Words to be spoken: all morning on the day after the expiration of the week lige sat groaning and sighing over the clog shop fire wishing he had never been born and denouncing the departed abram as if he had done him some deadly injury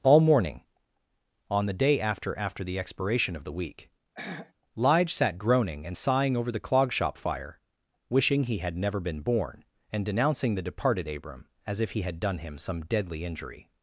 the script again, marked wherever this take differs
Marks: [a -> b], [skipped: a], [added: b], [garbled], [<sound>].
all morning on the day after [added: after] the expiration of the week [throat clearing] lige sat groaning and sighing over the clog shop fire wishing he had never been born and denouncing the departed abram as if he had done him some deadly injury